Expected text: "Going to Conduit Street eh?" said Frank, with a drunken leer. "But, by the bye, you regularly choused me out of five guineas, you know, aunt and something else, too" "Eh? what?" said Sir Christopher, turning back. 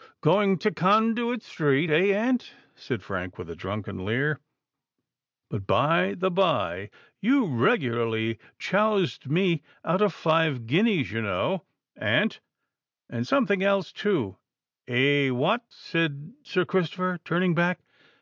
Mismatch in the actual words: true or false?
true